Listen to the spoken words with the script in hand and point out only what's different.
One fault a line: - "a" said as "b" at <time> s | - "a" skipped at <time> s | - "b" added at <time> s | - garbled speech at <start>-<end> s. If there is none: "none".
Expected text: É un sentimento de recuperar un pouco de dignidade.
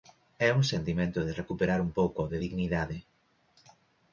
none